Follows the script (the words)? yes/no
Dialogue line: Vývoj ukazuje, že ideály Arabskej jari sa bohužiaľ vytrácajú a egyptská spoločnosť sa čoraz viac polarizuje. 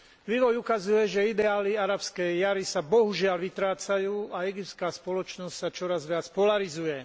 yes